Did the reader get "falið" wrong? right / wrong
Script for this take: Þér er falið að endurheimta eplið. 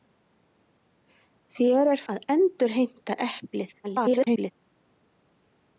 wrong